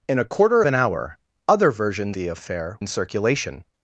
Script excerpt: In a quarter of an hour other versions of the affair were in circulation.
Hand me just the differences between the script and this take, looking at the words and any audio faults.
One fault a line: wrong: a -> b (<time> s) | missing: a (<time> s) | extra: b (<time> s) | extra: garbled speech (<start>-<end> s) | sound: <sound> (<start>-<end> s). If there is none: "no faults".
missing: of (0.6 s)
missing: of (2.2 s)
missing: were (2.8 s)